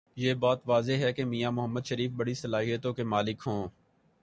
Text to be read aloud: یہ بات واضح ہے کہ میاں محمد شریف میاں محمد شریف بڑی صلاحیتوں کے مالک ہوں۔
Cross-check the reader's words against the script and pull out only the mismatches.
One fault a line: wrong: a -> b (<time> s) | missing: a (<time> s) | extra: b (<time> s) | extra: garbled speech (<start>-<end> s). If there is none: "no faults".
missing: میاں محمد شریف (2.1 s)